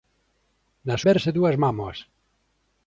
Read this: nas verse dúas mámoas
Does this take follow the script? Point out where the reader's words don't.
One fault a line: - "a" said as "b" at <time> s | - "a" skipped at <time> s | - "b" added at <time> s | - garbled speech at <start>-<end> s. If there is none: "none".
none